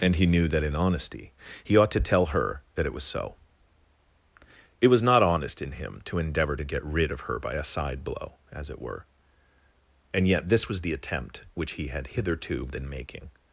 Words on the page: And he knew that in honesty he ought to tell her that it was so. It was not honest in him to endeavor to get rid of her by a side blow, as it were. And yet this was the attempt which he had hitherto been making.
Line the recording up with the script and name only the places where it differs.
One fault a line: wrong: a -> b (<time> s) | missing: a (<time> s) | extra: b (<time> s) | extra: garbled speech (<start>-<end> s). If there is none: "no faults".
no faults